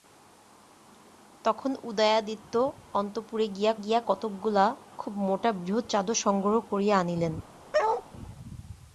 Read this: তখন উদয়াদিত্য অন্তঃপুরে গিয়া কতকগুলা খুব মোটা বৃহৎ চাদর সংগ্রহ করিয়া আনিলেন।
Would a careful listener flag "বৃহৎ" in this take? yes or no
no